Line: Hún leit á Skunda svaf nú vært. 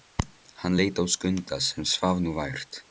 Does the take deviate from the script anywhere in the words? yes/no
yes